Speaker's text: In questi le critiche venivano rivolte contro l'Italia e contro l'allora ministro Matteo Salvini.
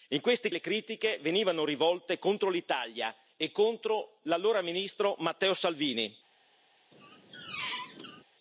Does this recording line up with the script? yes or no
yes